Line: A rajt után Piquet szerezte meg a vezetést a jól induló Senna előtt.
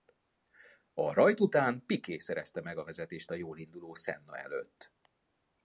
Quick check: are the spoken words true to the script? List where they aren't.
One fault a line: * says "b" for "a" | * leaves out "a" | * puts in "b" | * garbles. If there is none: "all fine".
all fine